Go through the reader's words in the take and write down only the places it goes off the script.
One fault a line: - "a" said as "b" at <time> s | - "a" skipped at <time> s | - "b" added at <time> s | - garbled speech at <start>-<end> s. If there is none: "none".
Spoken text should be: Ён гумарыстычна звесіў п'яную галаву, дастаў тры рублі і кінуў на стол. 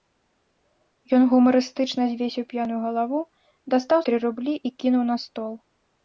none